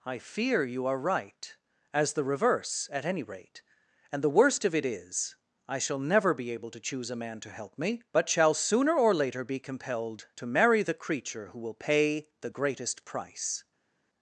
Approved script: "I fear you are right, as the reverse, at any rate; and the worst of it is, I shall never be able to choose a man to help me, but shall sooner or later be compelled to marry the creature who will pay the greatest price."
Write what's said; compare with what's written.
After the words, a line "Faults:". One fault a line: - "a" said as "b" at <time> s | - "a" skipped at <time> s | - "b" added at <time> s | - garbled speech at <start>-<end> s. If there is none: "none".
"I fear you are right, as the reverse, at any rate; and the worst of it is, I shall never be able to choose a man to help me, but shall sooner or later be compelled to marry the creature who will pay the greatest price."
Faults:
none